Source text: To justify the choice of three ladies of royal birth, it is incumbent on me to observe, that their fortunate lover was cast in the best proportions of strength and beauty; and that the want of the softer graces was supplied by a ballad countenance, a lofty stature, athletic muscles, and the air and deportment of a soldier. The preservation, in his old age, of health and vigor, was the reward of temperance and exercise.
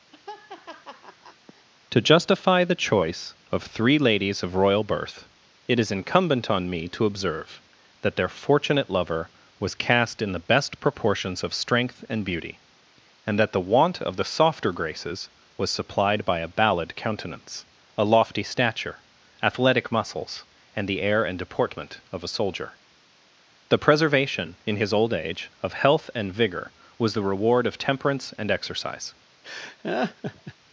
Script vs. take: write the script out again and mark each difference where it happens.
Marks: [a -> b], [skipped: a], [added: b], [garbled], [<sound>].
[laugh] To justify the choice of three ladies of royal birth, it is incumbent on me to observe, that their fortunate lover was cast in the best proportions of strength and beauty; and that the want of the softer graces was supplied by a ballad countenance, a lofty stature, athletic muscles, and the air and deportment of a soldier. The preservation, in his old age, of health and vigor, was the reward of temperance and exercise. [laugh]